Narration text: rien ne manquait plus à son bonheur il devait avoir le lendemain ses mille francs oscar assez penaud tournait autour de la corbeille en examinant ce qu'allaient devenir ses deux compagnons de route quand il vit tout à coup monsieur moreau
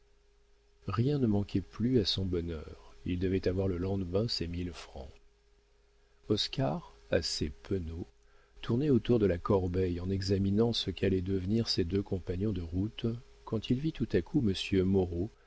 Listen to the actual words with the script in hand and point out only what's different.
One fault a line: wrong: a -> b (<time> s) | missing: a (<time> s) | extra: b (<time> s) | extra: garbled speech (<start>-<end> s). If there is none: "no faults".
no faults